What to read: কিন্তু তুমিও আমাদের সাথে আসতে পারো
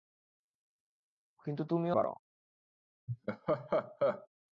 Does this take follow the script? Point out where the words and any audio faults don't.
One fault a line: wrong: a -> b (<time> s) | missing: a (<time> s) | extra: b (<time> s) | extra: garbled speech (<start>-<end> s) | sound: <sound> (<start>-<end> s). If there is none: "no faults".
missing: আমাদের সাথে আসতে (2.0 s)
sound: laugh (3.1-4.3 s)